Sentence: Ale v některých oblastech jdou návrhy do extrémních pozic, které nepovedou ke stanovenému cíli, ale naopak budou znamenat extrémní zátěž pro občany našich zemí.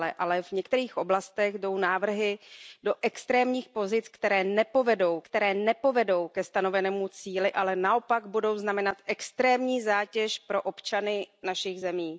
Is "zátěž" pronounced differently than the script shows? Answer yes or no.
no